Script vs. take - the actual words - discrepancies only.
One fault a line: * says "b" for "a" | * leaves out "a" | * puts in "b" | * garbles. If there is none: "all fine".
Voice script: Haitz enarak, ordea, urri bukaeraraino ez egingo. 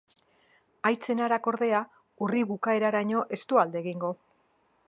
* puts in "du alde"